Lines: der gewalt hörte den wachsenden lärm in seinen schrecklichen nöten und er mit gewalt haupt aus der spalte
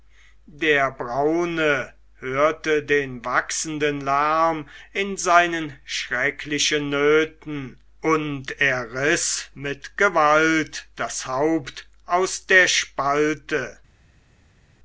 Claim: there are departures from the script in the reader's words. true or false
true